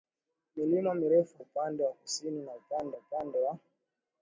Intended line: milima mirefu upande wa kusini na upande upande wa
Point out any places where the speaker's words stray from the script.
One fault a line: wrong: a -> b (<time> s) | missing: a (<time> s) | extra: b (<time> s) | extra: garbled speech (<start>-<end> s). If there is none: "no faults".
no faults